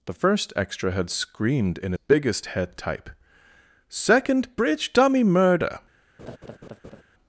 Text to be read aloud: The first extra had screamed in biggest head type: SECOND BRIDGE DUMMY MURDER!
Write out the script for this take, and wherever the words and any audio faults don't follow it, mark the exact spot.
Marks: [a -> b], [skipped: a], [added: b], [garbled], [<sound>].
The first extra had screamed in biggest head type: SECOND BRIDGE DUMMY MURDER! [laugh]